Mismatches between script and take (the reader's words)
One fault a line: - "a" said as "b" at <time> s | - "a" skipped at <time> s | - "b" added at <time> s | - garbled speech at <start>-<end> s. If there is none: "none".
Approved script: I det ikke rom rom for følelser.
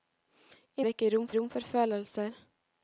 none